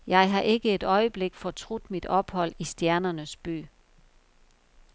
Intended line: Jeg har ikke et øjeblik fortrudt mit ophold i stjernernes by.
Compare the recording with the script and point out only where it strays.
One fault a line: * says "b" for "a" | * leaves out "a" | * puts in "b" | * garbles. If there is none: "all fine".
all fine